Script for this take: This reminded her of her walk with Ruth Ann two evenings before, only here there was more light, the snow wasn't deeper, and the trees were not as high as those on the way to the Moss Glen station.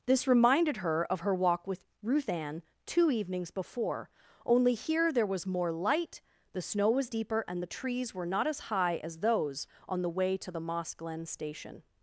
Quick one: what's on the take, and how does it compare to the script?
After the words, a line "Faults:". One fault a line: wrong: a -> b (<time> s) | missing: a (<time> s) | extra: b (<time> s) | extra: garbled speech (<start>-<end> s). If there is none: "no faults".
This reminded her of her walk with Ruth Ann two evenings before, only here there was more light, the snow was deeper, and the trees were not as high as those on the way to the Moss Glen station.
Faults:
wrong: wasn't -> was (6.9 s)